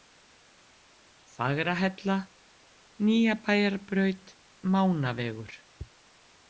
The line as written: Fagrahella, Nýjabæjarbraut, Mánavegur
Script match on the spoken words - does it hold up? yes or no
yes